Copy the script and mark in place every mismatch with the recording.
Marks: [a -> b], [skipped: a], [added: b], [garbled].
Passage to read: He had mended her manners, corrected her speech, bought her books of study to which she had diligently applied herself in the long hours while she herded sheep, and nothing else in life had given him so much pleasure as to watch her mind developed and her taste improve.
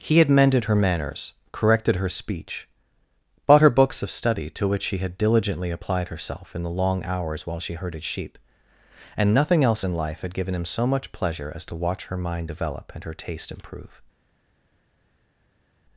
He had mended her manners, corrected her speech, bought her books of study to which she had diligently applied herself in the long hours while she herded sheep, and nothing else in life had given him so much pleasure as to watch her mind [developed -> develop] and her taste improve.